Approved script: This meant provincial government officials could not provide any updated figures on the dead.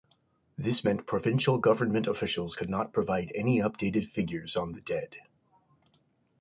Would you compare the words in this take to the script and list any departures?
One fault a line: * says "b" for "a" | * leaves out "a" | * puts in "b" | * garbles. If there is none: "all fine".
all fine